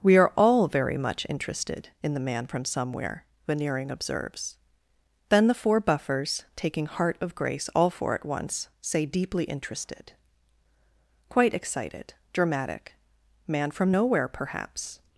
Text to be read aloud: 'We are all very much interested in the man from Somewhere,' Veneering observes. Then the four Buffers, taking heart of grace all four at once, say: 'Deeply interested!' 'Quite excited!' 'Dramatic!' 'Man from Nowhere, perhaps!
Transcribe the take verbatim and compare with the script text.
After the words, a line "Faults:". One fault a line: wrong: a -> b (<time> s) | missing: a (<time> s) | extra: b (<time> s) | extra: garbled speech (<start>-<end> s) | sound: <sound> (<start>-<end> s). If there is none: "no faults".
'We are all very much interested in the man from Somewhere,' Veneering observes. Then the four Buffers, taking heart of grace all four at once, say: 'Deeply interested!' 'Quite excited!' 'Dramatic!' 'Man from Nowhere, perhaps!
Faults:
no faults